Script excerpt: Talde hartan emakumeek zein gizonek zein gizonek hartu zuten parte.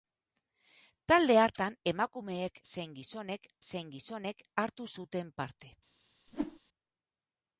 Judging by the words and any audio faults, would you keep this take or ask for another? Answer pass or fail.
fail